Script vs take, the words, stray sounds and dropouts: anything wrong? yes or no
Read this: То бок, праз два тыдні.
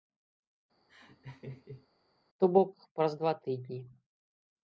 yes